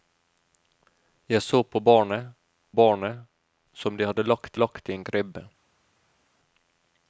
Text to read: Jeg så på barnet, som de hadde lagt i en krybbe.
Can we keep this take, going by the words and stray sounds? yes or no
no